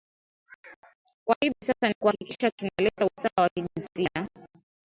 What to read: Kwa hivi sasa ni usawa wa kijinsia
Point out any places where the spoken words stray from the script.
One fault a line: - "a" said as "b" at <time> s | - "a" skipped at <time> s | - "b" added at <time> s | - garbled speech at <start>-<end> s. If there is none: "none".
- "kuhakikisha tunaleta" added at 1.9 s